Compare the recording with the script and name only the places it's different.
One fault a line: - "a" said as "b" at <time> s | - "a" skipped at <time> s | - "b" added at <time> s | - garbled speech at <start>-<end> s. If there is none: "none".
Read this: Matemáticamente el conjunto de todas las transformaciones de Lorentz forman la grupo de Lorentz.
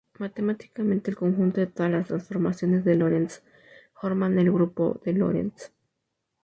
- "la" said as "el" at 4.4 s